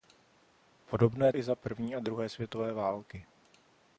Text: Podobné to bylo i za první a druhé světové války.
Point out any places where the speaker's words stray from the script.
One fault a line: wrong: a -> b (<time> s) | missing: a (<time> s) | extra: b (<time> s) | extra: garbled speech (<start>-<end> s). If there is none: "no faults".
missing: to bylo (1.3 s)